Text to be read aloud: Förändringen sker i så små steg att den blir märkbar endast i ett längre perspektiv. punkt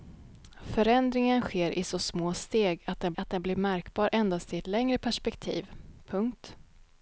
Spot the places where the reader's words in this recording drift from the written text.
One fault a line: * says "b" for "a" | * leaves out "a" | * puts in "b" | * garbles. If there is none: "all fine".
* puts in "att den"